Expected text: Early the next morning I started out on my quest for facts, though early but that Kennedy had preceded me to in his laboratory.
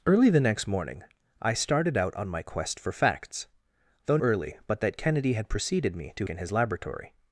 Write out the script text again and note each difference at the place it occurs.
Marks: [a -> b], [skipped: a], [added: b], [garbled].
Early the next morning I started out on my quest for facts, though early but that Kennedy had preceded me to in his laboratory.